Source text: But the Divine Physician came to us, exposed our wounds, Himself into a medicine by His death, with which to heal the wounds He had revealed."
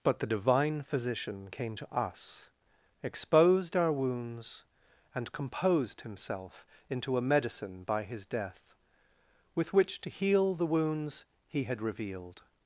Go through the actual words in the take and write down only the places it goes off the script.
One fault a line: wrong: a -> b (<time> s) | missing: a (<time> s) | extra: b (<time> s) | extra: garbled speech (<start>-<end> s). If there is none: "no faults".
extra: and composed (5.1 s)